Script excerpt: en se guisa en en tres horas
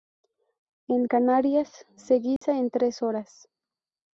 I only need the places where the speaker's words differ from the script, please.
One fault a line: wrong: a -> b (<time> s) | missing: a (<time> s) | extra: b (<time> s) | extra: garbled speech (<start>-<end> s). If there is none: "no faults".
extra: canarias (1.0 s)
missing: en (2.7 s)